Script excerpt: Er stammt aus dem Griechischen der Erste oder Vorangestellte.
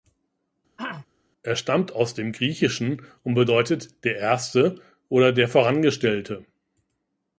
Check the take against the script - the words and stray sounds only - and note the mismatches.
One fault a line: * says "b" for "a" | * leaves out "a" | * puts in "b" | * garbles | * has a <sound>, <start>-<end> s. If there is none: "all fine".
* has a throat clearing, 0.8-1.1 s
* puts in "und bedeutet"
* puts in "der"